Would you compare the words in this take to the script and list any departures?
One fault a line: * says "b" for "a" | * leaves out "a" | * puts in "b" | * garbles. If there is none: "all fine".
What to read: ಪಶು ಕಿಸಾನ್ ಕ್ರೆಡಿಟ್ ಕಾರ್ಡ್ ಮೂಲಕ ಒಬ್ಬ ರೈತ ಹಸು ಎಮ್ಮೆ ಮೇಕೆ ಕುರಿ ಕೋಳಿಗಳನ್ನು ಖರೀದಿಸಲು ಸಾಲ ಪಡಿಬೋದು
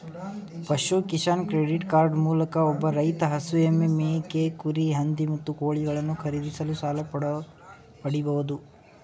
* puts in "ಹಂದಿ ಮತ್ತು"